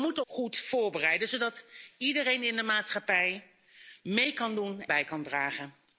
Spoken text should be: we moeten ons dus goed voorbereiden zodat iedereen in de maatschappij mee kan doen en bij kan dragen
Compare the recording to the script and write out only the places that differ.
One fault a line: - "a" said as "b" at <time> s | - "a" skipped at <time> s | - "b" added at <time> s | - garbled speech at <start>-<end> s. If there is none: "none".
- "ons dus" skipped at 0.2 s
- "en" skipped at 4.8 s